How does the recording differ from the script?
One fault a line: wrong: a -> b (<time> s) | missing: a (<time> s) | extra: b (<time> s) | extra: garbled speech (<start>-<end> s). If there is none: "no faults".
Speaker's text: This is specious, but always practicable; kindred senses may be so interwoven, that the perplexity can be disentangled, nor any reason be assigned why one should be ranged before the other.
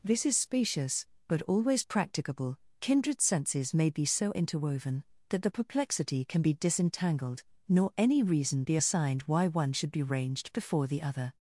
no faults